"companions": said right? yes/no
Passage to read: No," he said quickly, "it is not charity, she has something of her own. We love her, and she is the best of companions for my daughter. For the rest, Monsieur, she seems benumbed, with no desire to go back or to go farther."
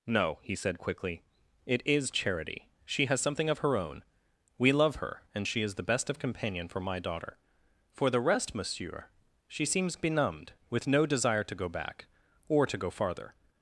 no